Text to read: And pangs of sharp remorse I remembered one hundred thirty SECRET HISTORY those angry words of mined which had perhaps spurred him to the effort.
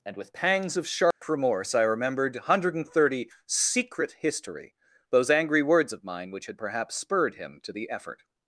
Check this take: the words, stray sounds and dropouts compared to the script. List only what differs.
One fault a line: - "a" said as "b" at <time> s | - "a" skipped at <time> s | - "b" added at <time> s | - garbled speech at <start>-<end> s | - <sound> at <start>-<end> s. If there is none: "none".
- "with" added at 0.2 s
- dropout at 1.1-1.2 s
- "mined" said as "mine" at 6.0 s